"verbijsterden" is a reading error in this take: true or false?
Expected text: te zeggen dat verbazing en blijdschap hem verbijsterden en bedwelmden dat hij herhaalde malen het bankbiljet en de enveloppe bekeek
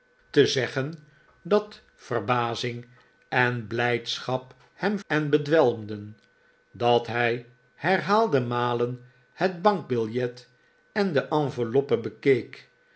true